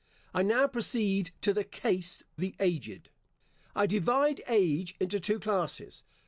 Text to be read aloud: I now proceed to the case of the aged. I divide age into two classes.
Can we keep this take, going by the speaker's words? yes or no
no